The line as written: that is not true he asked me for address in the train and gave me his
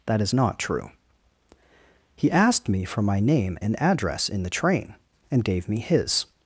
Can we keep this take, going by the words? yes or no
no